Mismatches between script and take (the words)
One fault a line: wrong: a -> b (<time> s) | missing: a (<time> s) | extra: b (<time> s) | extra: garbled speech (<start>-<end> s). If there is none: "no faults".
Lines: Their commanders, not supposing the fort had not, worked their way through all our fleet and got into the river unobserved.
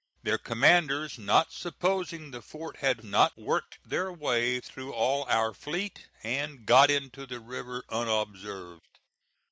no faults